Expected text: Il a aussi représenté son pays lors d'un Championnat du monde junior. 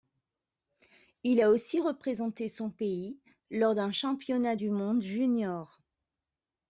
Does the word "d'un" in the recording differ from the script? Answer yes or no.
no